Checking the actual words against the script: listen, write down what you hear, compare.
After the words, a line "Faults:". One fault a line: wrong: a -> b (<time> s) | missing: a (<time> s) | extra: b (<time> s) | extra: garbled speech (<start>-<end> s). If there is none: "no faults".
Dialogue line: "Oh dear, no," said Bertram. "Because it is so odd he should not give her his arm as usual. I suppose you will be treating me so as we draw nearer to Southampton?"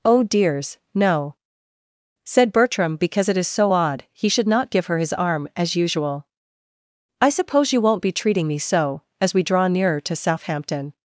"Oh dears, no," said Bertram. "Because it is so odd he should not give her his arm as usual. I suppose you won't be treating me so as we draw nearer to Southampton?"
Faults:
wrong: dear -> dears (0.2 s)
wrong: will -> won't (7.8 s)